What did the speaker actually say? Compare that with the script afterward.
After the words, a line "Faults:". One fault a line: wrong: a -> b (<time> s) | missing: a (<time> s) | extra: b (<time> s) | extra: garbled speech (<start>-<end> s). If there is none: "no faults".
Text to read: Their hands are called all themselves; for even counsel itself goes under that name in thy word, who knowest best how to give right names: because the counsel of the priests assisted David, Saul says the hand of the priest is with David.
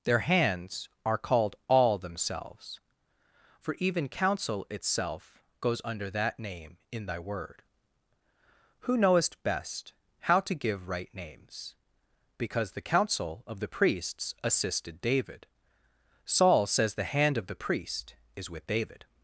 Their hands are called all themselves; for even counsel itself goes under that name in thy word, who knowest best how to give right names: because the counsel of the priests assisted David, Saul says the hand of the priest is with David.
Faults:
no faults